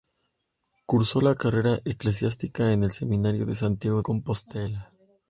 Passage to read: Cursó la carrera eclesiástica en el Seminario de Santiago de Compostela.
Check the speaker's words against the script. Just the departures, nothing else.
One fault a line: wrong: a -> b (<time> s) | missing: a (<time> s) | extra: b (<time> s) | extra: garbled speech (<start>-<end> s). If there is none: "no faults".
missing: de (4.0 s)